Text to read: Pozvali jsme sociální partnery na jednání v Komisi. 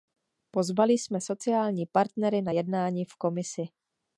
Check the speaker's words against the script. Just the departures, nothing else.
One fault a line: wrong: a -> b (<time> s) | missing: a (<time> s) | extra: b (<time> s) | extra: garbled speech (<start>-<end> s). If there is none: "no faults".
no faults